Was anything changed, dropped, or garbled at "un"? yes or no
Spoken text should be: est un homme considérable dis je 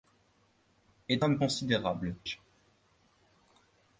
yes